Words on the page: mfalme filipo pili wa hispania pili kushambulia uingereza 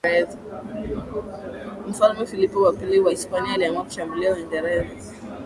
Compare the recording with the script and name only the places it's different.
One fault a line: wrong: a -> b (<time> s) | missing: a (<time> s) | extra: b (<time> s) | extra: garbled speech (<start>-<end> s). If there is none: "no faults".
extra: wa (2.6 s)
wrong: pili -> aliamua (3.5 s)